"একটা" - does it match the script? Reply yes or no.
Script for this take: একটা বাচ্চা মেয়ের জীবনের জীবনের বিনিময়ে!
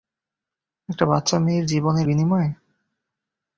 yes